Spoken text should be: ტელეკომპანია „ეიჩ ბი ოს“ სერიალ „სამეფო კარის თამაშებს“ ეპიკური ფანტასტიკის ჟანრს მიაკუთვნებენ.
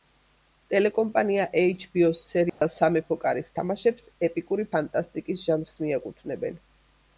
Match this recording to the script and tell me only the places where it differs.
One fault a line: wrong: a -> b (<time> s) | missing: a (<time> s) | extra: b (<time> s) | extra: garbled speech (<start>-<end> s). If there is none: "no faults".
no faults